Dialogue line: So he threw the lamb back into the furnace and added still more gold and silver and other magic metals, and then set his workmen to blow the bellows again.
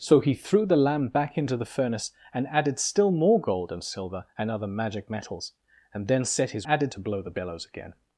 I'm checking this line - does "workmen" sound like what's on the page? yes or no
no